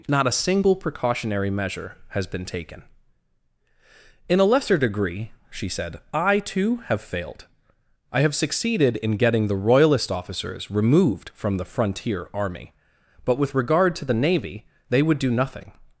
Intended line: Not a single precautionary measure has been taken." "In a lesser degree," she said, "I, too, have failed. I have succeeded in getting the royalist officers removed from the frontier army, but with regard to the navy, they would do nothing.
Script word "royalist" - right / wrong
right